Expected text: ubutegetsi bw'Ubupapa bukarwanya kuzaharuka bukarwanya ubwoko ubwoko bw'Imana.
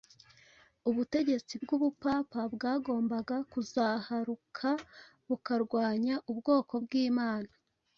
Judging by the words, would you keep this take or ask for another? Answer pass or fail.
fail